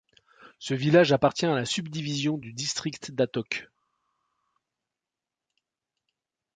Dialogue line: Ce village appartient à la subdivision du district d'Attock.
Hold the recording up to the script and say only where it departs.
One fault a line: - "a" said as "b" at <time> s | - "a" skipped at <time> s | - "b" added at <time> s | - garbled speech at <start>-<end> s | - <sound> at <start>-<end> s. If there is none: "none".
none